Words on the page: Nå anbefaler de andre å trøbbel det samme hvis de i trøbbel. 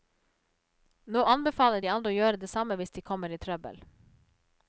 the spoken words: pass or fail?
fail